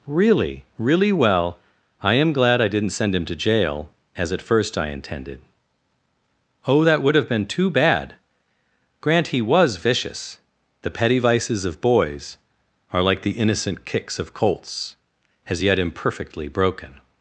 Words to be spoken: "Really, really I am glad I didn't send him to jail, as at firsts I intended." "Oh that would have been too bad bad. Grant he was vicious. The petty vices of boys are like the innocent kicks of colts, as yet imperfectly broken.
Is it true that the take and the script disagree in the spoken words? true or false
true